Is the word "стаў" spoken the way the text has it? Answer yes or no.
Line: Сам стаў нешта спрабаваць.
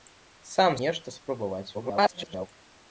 no